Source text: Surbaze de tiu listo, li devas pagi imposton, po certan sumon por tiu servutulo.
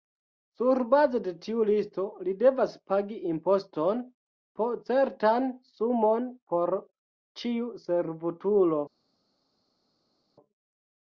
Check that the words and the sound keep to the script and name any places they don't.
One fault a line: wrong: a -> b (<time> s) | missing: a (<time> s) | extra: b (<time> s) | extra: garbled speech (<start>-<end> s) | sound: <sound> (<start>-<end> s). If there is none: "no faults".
wrong: tiu -> ĉiu (7.4 s)